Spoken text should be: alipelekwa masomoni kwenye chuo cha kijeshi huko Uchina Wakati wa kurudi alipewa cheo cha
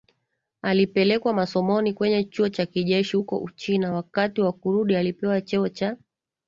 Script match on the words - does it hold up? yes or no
yes